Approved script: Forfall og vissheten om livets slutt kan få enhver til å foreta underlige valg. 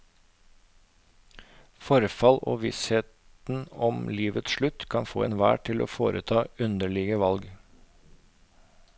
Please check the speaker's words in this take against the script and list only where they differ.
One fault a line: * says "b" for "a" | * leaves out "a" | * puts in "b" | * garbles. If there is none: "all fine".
all fine